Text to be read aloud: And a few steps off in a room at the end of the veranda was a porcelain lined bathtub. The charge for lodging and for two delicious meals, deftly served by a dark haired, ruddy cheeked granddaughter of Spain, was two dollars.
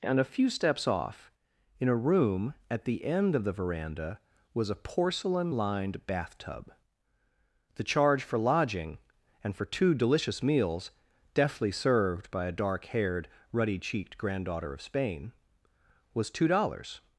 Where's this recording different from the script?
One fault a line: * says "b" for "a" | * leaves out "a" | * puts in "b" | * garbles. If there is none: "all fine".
all fine